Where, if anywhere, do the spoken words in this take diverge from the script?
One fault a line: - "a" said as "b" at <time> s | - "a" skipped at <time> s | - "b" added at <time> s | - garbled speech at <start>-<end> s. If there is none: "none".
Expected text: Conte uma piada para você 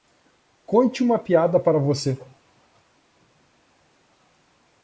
none